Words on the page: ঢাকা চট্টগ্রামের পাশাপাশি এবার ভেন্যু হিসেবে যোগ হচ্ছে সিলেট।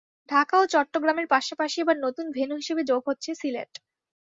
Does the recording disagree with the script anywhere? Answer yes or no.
yes